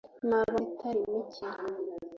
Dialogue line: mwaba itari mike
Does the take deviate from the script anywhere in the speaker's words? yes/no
no